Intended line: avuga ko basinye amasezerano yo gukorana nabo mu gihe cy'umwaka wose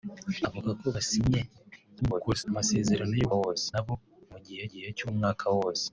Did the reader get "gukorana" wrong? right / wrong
wrong